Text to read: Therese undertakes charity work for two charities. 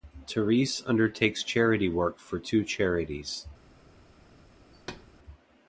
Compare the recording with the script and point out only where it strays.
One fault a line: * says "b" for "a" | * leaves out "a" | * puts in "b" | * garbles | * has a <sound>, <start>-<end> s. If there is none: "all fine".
* has a thud, 4.7-5.1 s